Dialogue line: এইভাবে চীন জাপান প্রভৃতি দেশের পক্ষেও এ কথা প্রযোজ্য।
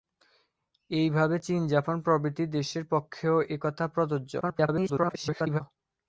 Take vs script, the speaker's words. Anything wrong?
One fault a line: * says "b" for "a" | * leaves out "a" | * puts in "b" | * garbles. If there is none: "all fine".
* garbles